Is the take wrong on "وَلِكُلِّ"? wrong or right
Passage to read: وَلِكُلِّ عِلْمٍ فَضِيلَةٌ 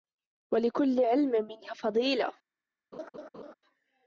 right